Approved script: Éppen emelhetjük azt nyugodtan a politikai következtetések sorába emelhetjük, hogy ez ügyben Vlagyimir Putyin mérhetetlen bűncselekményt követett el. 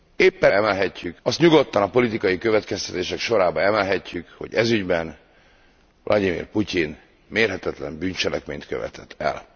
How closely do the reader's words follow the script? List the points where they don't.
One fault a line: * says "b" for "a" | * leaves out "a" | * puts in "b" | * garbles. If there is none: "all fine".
all fine